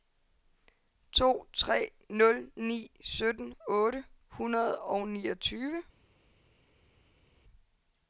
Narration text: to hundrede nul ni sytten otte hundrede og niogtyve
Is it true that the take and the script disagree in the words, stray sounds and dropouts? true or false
true